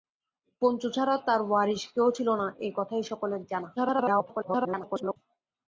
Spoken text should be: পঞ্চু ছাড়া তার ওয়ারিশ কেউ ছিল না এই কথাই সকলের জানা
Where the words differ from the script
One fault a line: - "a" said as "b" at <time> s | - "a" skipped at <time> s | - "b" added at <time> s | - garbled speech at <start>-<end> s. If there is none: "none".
- garbled speech at 3.8-5.2 s